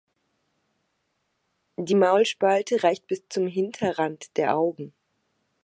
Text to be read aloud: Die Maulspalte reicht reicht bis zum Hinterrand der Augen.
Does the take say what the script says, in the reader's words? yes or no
no